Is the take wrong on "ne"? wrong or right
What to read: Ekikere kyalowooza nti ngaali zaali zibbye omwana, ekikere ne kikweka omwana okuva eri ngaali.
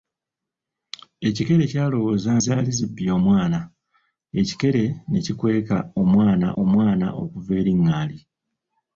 right